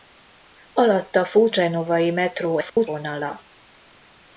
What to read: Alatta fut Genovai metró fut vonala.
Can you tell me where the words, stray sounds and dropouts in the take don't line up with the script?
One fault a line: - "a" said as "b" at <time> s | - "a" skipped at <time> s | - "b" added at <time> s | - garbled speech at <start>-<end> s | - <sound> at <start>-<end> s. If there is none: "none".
- dropout at 2.7-2.8 s